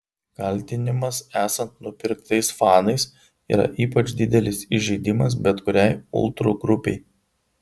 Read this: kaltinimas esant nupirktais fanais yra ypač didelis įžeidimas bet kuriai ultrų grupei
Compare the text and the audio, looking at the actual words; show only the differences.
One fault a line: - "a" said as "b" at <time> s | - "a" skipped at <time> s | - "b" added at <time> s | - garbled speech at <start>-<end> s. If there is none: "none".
none